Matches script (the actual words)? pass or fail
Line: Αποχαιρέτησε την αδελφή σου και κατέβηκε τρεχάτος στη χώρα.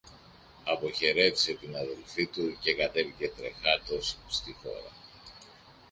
fail